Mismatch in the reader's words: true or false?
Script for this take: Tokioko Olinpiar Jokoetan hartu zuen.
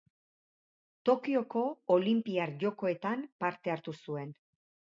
true